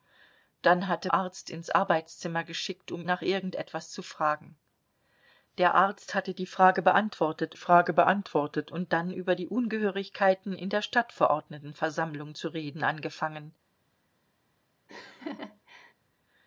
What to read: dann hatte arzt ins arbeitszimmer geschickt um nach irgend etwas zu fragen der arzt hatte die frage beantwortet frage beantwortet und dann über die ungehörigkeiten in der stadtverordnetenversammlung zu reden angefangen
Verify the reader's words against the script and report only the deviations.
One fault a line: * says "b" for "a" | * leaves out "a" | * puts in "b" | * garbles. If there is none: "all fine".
all fine